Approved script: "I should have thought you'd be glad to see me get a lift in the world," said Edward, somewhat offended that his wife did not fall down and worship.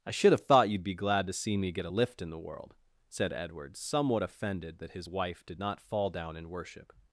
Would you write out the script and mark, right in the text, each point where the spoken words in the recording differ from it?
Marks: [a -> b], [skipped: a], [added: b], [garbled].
"I should have thought you'd be glad to see me get a lift in the world," said Edward, somewhat offended that his wife did not fall down [and -> in] worship.